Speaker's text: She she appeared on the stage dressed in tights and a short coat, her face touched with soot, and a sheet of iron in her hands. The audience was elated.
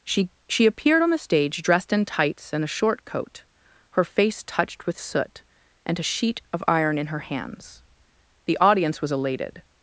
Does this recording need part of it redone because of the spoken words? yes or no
no